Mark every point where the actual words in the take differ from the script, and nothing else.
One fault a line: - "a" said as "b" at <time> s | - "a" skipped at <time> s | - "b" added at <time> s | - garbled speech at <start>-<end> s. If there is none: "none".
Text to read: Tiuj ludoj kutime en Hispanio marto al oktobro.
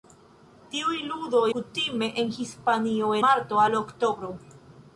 none